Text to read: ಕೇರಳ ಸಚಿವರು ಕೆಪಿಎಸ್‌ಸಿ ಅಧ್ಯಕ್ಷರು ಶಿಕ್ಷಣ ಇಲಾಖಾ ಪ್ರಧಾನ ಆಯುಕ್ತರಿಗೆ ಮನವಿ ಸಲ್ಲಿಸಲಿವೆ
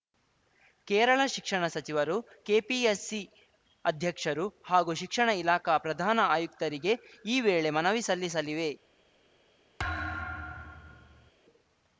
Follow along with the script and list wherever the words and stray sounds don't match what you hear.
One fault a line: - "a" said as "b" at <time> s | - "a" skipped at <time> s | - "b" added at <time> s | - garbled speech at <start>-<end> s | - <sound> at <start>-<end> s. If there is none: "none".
- "ಶಿಕ್ಷಣ" added at 1.2 s
- "ಹಾಗೂ" added at 4.7 s
- "ಈ ವೇಳೆ" added at 7.2 s
- thud at 9.8-11.3 s